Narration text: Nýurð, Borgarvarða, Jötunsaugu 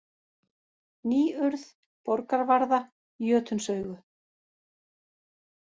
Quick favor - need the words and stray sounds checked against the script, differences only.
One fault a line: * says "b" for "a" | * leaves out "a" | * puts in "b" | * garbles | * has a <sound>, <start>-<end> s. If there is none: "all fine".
all fine